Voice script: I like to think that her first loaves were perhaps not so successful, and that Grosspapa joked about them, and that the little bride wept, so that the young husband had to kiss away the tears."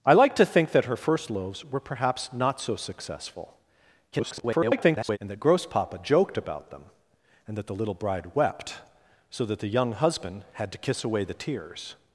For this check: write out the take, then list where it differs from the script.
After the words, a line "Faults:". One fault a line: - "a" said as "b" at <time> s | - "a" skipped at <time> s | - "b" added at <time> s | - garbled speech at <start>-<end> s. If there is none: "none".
I like to think that her first loaves were perhaps not so successful, [garbled] and that Grosspapa joked about them, and that the little bride wept, so that the young husband had to kiss away the tears."
Faults:
- garbled speech at 4.1-5.2 s